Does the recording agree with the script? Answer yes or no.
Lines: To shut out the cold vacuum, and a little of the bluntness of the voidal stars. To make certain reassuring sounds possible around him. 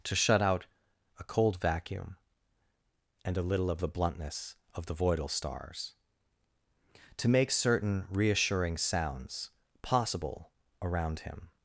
no